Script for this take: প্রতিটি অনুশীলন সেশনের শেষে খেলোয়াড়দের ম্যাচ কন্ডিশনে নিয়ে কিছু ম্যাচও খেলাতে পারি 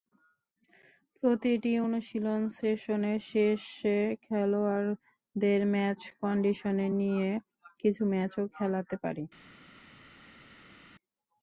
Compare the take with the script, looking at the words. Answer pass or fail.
pass